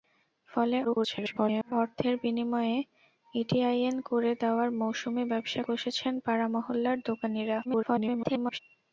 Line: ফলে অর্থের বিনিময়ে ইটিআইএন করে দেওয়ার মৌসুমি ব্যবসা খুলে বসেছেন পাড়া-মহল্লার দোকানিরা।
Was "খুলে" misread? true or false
true